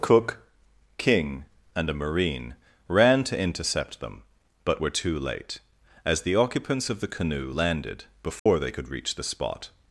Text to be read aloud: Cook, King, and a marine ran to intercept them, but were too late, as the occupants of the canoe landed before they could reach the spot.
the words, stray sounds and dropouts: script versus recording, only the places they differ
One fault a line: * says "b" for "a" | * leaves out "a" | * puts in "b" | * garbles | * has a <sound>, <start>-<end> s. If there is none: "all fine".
* has a dropout, 8.4-8.5 s